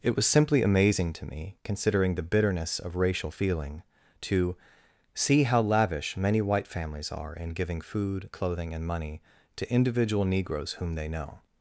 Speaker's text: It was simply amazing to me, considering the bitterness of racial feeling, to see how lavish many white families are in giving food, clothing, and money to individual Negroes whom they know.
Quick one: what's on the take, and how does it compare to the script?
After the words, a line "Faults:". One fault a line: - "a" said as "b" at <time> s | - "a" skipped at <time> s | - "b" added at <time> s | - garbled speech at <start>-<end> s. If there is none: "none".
It was simply amazing to me, considering the bitterness of racial feeling, to see how lavish many white families are in giving food, clothing, and money to individual Negroes whom they know.
Faults:
none